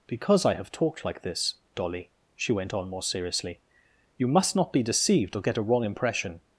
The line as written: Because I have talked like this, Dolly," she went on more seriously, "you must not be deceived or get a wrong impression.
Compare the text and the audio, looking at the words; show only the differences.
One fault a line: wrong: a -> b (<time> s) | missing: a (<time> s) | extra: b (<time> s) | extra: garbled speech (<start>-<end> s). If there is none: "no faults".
no faults